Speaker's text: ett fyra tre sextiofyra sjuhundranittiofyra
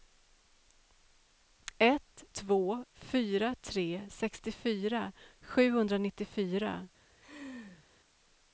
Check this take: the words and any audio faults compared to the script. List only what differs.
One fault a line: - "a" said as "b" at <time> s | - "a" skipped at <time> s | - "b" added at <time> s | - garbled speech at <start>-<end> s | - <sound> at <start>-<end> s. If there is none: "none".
- "två" added at 2.3 s
- laugh at 7.2-7.9 s